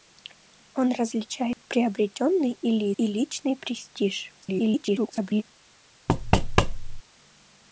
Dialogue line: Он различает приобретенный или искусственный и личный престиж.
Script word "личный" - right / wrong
right